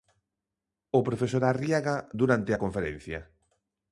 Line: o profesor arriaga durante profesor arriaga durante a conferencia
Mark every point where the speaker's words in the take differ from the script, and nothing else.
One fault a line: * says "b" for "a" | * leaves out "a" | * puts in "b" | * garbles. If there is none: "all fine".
* leaves out "profesor arriaga durante"